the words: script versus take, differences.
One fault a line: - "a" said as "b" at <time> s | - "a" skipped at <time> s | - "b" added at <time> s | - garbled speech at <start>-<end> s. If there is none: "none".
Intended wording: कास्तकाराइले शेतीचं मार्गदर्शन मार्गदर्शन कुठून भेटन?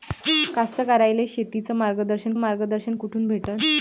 none